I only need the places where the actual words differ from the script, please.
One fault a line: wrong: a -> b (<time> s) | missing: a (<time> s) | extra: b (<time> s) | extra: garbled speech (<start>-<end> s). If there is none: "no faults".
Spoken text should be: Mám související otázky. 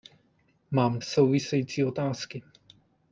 no faults